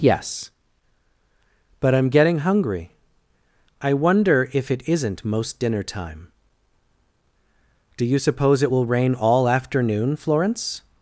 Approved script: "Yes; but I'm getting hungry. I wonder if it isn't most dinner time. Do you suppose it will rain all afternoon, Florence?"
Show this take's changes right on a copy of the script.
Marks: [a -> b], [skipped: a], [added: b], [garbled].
"Yes; but I'm getting hungry. I wonder if it isn't most dinner time. Do you suppose it will rain all afternoon, Florence?"